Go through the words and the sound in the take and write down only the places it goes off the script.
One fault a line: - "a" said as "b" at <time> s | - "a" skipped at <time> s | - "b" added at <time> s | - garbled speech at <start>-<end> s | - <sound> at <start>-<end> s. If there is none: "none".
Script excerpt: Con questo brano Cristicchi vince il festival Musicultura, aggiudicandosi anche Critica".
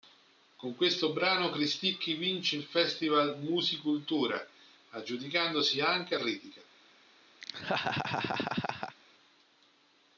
- laugh at 7.4-9.0 s